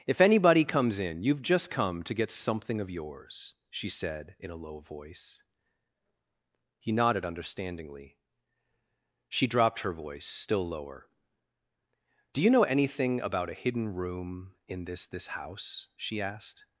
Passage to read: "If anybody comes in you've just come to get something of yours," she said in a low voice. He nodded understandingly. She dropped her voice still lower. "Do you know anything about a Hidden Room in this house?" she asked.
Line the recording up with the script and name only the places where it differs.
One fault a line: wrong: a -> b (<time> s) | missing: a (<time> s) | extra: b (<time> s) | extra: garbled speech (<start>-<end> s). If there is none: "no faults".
extra: this (15.1 s)